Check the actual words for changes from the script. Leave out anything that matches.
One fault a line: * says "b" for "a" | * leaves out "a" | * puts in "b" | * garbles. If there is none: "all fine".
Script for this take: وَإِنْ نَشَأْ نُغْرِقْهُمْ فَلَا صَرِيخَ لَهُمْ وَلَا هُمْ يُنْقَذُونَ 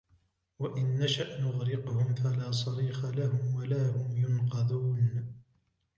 all fine